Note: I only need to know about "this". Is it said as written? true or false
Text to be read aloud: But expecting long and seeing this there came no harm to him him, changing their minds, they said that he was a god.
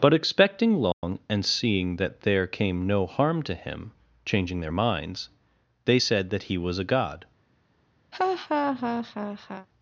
false